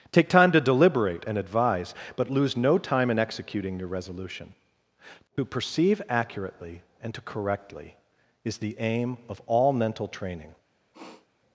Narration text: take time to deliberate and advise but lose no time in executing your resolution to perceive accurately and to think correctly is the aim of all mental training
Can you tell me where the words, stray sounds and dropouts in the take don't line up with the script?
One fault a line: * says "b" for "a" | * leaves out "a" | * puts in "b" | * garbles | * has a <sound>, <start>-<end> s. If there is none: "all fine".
* leaves out "think"
* has a sniff, 10.9-11.3 s